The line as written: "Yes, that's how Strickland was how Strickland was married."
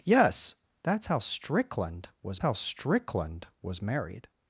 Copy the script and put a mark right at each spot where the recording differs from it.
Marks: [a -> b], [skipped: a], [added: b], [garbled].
"Yes, that's how Strickland was how Strickland was married."